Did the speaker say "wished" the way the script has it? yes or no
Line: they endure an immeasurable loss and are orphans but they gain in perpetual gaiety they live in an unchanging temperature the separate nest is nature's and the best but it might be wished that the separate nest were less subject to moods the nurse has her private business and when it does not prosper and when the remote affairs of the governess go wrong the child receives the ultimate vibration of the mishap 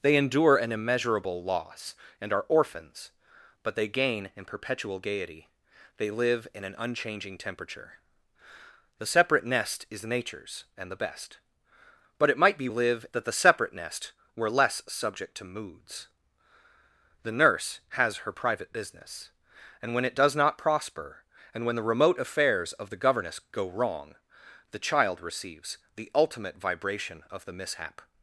no